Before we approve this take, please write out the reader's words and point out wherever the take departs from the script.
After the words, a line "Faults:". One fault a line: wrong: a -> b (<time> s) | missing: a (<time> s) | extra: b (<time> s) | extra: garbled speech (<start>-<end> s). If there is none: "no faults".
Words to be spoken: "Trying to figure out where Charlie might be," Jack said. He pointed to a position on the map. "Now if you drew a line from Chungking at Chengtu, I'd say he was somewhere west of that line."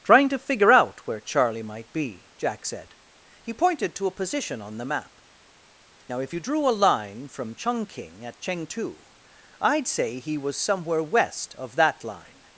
"Trying to figure out where Charlie might be," Jack said. He pointed to a position on the map. "Now if you drew a line from Chungking at Chengtu, I'd say he was somewhere west of that line."
Faults:
no faults